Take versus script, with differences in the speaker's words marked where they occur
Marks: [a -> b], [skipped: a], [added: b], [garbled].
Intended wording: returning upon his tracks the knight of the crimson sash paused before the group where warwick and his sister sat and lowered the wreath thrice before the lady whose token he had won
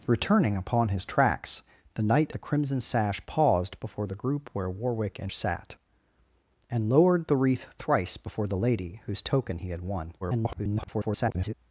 returning upon his tracks the knight [skipped: of] the crimson sash paused before the group where warwick and [skipped: his sister] sat and lowered the wreath thrice before the lady whose token he had won [garbled]